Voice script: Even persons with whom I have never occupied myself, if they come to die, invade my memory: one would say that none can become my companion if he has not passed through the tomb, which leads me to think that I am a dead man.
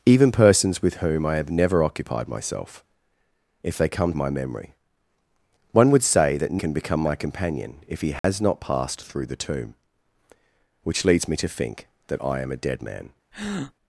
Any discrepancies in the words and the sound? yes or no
yes